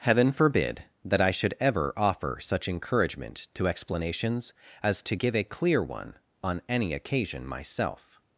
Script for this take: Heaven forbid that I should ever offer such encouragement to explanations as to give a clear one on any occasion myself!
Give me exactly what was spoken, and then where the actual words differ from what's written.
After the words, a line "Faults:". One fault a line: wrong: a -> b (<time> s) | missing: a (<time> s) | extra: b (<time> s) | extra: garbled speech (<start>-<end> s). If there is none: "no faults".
Heaven forbid that I should ever offer such encouragement to explanations as to give a clear one on any occasion myself!
Faults:
no faults